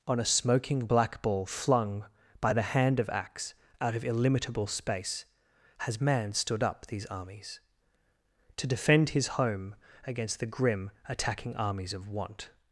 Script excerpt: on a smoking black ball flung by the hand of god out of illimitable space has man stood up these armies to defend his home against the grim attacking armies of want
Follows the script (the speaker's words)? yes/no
no